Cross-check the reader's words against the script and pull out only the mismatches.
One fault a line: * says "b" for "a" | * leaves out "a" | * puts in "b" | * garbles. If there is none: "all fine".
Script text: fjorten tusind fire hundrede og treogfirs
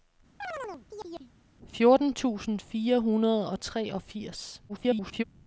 * garbles